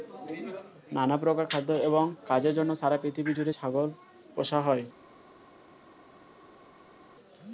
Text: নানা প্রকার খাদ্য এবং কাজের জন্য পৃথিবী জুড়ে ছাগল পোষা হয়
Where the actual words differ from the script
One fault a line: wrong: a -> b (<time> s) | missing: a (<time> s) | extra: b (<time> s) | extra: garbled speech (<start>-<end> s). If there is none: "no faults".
extra: সারা (2.8 s)